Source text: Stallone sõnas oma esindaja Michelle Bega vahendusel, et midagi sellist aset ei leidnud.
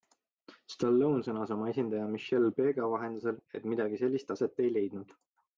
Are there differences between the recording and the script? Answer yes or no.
no